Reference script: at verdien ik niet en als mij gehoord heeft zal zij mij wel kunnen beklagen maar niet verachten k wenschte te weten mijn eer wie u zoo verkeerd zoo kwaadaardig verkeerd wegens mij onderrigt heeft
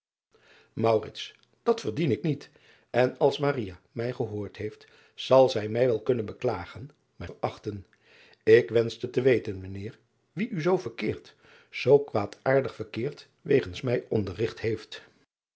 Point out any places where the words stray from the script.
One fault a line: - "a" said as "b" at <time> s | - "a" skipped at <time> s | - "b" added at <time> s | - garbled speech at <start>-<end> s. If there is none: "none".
- "niet" skipped at 7.3 s